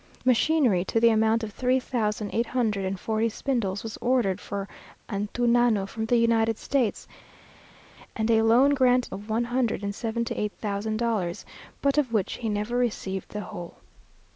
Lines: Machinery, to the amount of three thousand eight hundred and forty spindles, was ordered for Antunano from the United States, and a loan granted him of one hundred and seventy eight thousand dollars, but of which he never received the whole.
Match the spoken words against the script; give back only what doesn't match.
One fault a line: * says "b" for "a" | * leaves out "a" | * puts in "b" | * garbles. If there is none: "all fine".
* leaves out "him"